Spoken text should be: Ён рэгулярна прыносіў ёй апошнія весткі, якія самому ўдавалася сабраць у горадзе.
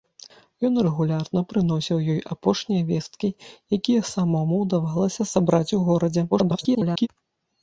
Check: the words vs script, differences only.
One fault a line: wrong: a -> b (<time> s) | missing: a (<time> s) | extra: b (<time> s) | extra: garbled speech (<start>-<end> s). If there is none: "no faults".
extra: garbled speech (6.3-7.1 s)